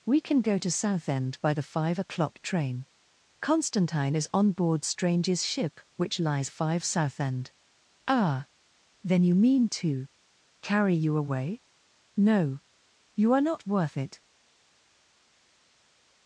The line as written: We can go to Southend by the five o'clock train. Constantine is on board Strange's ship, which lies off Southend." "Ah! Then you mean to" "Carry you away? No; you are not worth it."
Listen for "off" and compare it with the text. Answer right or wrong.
wrong